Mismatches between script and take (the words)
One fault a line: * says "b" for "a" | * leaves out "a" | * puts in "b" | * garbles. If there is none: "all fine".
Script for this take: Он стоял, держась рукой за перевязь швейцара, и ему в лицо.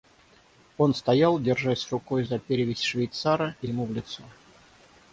all fine